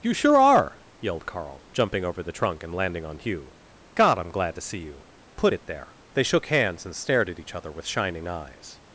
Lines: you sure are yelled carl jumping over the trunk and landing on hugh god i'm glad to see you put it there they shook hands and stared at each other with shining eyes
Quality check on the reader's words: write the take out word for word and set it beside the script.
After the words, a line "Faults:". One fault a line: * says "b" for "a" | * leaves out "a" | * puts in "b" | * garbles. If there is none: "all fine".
you sure are yelled carl jumping over the trunk and landing on hugh god i'm glad to see you put it there they shook hands and stared at each other with shining eyes
Faults:
all fine